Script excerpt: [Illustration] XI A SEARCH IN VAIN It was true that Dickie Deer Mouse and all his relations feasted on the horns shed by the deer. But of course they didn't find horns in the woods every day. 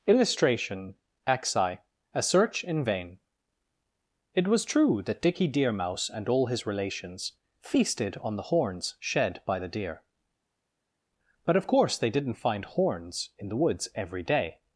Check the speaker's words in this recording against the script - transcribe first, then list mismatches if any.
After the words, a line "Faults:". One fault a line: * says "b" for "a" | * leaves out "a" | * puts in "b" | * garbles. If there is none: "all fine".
[Illustration] XI A SEARCH IN VAIN It was true that Dickie Deer Mouse and all his relations feasted on the horns shed by the deer. But of course they didn't find horns in the woods every day.
Faults:
all fine